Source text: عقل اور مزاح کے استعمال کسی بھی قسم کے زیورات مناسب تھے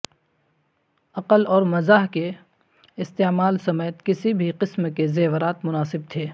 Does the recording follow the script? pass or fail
fail